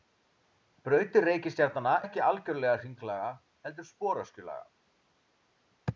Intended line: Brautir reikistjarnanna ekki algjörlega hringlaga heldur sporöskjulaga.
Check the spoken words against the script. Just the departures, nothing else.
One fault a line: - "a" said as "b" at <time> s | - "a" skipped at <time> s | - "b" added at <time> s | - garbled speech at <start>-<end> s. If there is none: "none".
none